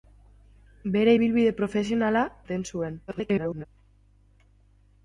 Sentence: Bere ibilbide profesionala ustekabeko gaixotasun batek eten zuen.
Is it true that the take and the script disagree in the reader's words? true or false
true